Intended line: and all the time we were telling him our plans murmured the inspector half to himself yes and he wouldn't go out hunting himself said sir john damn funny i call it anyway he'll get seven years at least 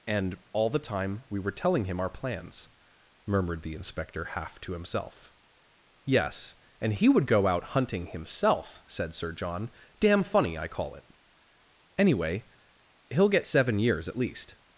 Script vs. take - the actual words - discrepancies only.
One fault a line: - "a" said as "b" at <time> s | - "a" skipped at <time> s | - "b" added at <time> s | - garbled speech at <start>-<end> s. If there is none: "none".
- "wouldn't" said as "would" at 7.1 s